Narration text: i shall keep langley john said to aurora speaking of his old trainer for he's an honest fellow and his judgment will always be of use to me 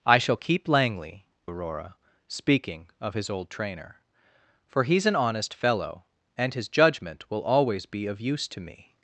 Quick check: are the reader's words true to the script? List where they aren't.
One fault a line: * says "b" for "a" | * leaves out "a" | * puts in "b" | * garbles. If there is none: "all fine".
* leaves out "john said to"